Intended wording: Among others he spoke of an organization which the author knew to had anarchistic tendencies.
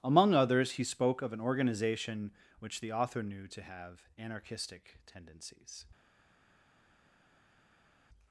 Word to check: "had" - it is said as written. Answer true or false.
false